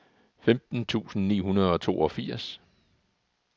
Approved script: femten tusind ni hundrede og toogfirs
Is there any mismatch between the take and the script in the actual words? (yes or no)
no